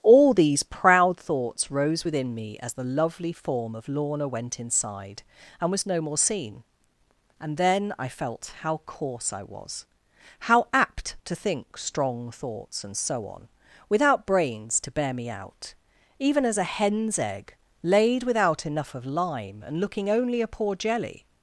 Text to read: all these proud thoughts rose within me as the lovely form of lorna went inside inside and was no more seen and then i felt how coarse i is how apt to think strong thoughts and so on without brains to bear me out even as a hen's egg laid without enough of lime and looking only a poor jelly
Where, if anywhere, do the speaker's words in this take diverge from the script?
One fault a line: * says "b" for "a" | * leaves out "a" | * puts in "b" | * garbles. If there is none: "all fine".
* leaves out "inside"
* says "was" for "is"